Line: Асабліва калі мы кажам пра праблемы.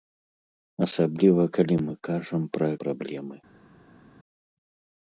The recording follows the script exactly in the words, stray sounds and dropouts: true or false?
true